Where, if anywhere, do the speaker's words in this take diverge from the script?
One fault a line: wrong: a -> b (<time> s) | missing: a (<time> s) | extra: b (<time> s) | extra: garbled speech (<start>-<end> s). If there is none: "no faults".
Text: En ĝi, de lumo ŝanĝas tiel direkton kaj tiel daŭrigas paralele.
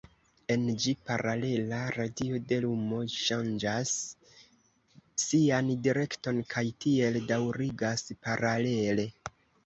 extra: paralela radio (1.1 s)
wrong: tiel -> sian (5.3 s)